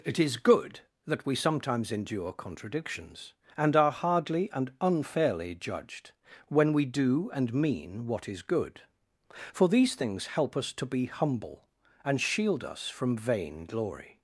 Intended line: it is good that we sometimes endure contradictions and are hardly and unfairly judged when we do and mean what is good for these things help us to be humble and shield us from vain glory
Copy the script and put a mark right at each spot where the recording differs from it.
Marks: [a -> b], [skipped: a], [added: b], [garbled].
it is good that we sometimes endure contradictions and are hardly and unfairly judged when we do and mean what is good for these things help us to be humble and shield us from vain glory